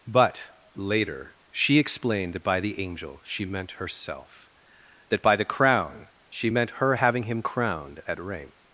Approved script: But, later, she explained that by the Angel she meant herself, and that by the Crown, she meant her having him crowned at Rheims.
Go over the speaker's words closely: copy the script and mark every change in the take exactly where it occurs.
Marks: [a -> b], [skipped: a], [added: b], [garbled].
But, later, she explained that by the Angel she meant herself, [skipped: and] that by the Crown, she meant her having him crowned at Rheims.